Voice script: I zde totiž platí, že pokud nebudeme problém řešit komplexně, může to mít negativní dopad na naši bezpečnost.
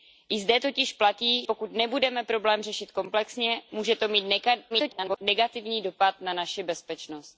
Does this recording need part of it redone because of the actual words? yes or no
yes